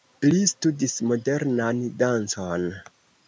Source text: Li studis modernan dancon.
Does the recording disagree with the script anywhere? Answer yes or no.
no